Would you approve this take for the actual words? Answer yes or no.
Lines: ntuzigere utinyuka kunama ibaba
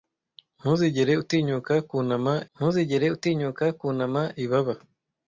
no